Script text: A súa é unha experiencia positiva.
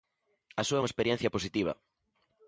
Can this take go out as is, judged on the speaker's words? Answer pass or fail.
pass